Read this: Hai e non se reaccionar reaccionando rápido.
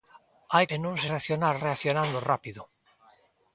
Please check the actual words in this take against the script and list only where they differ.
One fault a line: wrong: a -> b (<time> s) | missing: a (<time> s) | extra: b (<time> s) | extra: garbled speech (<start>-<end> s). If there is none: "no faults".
no faults